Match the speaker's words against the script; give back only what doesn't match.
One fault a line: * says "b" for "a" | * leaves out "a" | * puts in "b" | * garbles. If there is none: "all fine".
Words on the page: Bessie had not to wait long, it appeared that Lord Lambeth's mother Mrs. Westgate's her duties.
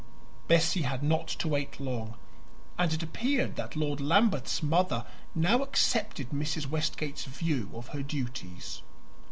* puts in "and"
* puts in "now accepted"
* puts in "view of"